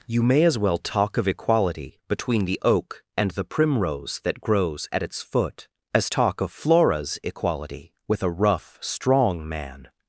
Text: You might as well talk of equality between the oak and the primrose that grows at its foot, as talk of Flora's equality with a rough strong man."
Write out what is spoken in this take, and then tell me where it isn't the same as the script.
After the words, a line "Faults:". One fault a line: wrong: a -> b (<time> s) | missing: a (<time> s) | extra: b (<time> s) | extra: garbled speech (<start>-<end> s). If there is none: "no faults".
You may as well talk of equality between the oak and the primrose that grows at its foot, as talk of Flora's equality with a rough strong man."
Faults:
wrong: might -> may (0.2 s)